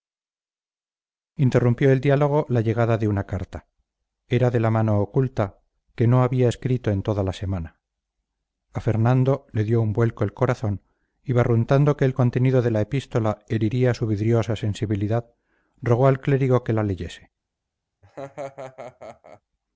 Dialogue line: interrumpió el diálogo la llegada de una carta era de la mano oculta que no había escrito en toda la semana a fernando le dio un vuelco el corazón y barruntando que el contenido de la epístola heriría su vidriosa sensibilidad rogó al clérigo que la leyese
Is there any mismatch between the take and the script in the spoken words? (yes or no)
no